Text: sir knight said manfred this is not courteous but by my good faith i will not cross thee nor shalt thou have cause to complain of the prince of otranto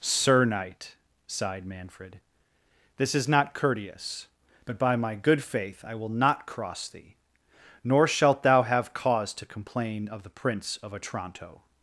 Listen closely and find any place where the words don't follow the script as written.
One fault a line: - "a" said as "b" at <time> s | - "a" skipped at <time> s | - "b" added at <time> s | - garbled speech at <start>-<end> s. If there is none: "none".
- "said" said as "sighed" at 1.3 s